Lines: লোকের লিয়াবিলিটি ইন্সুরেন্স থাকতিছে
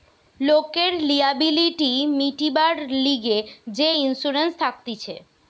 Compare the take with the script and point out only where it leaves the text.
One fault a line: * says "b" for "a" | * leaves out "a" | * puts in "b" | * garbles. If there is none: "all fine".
* puts in "মিটিবার লিগে যে"